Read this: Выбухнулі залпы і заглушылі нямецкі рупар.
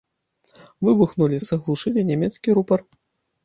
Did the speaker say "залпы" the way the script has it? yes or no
no